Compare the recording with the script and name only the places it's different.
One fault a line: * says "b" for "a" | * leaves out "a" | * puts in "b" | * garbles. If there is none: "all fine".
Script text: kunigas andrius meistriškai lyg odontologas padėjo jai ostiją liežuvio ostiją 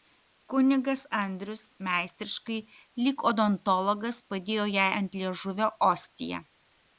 * says "ant" for "ostiją"